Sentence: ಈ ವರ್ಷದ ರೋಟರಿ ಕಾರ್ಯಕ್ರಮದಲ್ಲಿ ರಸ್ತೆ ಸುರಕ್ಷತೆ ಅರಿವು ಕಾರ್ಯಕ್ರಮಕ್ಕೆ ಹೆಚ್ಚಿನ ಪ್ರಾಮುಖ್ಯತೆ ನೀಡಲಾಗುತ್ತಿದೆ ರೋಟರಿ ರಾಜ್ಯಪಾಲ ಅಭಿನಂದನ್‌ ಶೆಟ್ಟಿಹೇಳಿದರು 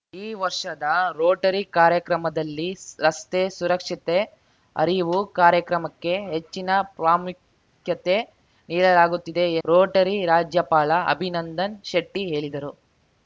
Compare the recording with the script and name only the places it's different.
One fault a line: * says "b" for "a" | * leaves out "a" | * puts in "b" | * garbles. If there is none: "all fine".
all fine